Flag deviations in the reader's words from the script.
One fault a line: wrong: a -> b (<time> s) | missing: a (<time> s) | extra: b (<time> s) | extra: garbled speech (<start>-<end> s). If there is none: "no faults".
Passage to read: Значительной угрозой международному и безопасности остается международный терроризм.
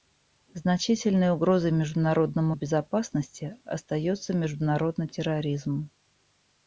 no faults